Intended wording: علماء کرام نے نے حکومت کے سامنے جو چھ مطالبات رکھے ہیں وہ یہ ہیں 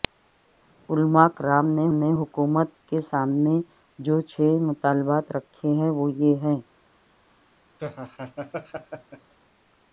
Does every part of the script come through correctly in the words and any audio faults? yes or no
no